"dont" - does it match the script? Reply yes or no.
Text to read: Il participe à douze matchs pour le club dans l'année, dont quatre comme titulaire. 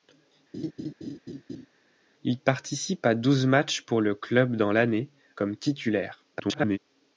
no